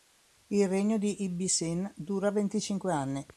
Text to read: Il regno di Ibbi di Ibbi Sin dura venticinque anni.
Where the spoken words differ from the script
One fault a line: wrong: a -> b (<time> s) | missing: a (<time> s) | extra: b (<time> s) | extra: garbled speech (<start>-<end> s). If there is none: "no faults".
missing: di Ibbi (1.5 s)